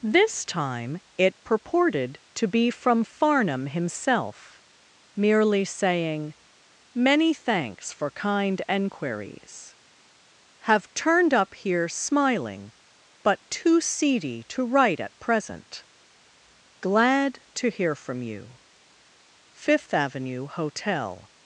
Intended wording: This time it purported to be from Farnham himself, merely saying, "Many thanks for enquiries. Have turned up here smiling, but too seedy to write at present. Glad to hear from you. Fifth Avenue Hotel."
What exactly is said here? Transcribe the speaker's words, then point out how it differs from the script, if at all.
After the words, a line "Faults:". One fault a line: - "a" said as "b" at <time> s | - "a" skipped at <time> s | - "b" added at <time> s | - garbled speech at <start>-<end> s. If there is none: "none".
This time it purported to be from Farnham himself, merely saying, "Many thanks for kind enquiries. Have turned up here smiling, but too seedy to write at present. Glad to hear from you. Fifth Avenue Hotel."
Faults:
- "kind" added at 8.1 s